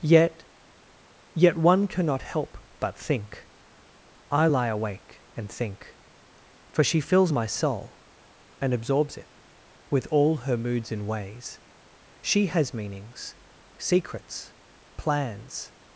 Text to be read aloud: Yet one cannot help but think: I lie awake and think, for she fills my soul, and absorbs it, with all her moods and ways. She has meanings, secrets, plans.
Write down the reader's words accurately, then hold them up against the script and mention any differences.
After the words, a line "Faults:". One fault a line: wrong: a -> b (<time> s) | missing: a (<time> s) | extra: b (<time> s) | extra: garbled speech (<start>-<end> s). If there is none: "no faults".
Yet yet one cannot help but think: I lie awake and think, for she fills my soul, and absorbs it, with all her moods and ways. She has meanings, secrets, plans.
Faults:
extra: yet (1.4 s)